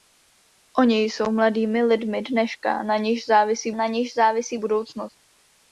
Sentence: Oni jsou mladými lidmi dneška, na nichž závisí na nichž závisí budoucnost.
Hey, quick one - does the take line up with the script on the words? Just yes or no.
yes